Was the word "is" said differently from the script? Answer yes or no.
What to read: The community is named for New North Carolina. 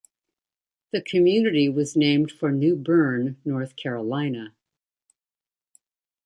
yes